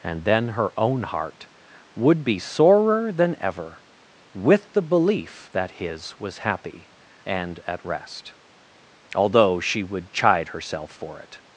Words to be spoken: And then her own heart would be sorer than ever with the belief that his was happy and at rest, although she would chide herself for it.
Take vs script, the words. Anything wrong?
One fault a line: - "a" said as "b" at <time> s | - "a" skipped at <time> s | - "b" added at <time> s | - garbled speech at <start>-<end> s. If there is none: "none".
none